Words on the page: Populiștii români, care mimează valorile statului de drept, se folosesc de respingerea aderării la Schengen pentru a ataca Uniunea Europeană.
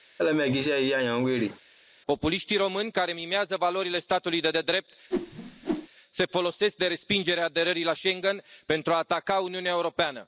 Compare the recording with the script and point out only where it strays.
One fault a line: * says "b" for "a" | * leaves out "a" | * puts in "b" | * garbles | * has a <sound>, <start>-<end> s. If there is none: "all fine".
* has a laugh, 0.2-1.6 s
* puts in "de"
* has a whoosh, 5.1-5.9 s